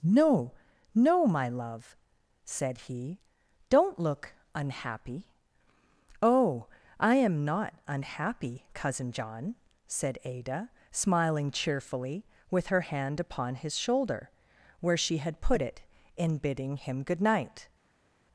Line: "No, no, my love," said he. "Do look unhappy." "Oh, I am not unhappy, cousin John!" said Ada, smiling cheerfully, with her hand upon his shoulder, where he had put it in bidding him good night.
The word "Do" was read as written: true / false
false